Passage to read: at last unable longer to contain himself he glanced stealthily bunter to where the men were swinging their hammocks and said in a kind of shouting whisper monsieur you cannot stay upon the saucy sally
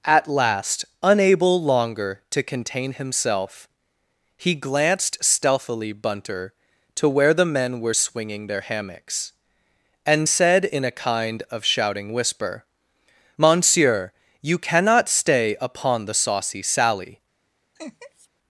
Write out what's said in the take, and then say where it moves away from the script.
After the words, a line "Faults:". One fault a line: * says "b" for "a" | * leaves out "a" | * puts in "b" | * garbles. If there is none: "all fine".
at last unable longer to contain himself he glanced stealthily bunter to where the men were swinging their hammocks and said in a kind of shouting whisper monsieur you cannot stay upon the saucy sally
Faults:
all fine